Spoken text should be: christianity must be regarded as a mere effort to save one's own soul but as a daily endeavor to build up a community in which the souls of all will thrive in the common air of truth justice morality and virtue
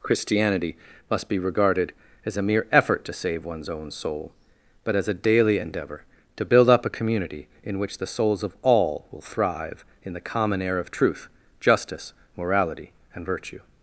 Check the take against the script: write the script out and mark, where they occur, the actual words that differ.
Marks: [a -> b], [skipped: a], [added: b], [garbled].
christianity must be regarded as a mere effort to save one's own soul but as a daily endeavor to build up a community in which the souls of all will thrive in the common air of truth justice morality and virtue